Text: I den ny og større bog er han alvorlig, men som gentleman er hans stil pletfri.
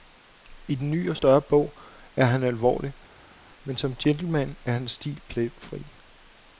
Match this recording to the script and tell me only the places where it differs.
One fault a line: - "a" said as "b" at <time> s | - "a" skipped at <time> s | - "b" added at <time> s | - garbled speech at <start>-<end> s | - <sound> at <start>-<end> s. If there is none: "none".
none